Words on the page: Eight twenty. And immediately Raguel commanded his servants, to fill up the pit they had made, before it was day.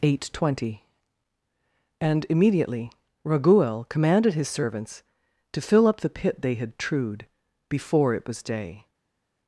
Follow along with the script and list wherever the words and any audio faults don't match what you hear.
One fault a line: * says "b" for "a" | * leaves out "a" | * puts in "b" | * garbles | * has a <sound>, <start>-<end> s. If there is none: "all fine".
* says "trued" for "made"